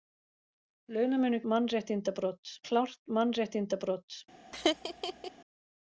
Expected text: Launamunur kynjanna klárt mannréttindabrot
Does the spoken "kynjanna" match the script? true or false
false